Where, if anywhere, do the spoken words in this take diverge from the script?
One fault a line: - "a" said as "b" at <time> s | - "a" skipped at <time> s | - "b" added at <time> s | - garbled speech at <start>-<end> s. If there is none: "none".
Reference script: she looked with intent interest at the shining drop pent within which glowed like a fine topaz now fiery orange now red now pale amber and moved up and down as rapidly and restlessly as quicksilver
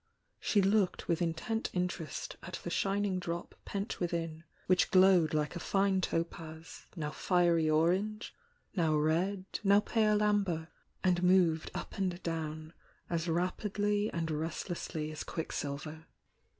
none